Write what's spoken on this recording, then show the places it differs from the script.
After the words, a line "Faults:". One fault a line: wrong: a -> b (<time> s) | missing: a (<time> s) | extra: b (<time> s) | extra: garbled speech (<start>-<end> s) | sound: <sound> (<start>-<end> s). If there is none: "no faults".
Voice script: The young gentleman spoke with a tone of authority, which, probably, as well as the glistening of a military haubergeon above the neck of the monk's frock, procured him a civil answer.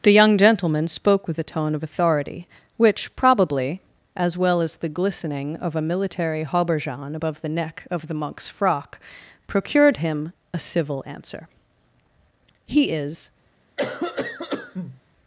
The young gentleman spoke with a tone of authority, which, probably, as well as the glistening of a military haubergeon above the neck of the monk's frock, procured him a civil answer. "He is
Faults:
extra: He is (12.7 s)
sound: cough (13.8-15.0 s)